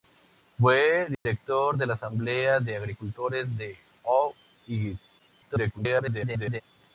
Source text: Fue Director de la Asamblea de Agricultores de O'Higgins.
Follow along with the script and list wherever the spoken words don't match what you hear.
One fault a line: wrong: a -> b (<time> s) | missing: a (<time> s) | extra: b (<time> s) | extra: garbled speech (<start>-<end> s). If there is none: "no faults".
extra: garbled speech (5.2-6.6 s)